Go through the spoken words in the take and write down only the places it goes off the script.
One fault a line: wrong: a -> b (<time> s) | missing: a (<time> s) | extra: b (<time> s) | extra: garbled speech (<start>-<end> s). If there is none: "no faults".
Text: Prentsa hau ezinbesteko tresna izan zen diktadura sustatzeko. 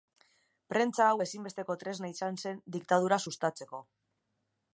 no faults